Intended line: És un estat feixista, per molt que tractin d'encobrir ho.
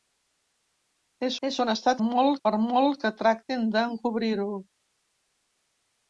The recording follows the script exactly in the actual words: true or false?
false